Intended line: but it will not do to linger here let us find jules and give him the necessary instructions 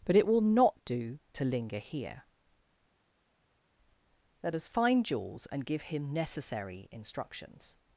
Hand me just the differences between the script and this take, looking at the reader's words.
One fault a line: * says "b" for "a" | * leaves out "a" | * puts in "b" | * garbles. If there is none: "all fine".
* leaves out "the"